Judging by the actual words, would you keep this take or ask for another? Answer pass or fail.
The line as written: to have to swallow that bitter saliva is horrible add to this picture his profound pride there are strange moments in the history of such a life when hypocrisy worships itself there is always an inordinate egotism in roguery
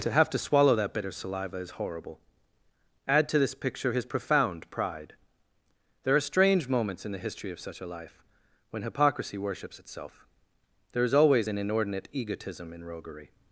pass